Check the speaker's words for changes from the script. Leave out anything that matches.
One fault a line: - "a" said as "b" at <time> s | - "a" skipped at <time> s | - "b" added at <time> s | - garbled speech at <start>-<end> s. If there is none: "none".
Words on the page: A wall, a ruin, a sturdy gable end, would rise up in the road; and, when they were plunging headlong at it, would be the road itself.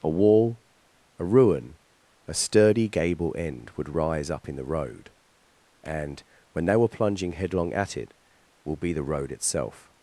- "would" said as "will" at 8.6 s